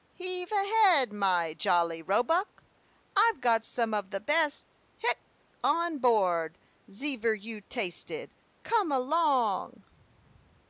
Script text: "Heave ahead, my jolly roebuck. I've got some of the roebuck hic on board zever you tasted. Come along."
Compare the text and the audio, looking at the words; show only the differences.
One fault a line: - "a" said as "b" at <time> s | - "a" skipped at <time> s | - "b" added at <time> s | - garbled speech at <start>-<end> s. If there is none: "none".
- "roebuck" said as "best" at 4.2 s